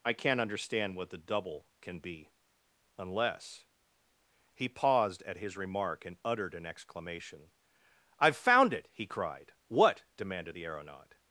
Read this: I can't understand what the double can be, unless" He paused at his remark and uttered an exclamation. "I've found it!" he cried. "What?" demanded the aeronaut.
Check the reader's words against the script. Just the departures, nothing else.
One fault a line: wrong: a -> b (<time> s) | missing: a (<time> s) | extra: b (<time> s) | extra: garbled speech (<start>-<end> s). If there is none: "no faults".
no faults